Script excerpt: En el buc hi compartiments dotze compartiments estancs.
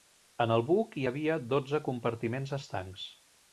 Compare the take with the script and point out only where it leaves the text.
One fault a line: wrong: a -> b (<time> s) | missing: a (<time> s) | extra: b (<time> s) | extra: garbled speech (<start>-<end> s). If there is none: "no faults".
wrong: compartiments -> havia (1.1 s)